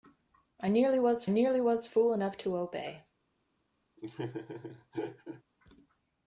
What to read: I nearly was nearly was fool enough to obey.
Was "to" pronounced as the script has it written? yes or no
yes